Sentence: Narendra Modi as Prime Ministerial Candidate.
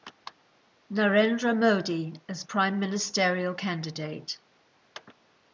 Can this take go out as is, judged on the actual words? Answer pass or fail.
pass